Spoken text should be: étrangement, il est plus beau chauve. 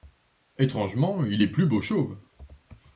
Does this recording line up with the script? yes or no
yes